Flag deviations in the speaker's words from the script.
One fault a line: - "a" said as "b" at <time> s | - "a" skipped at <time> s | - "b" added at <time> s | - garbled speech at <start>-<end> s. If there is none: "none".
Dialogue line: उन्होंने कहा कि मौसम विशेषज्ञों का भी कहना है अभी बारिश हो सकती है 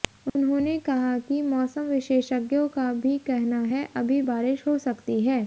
none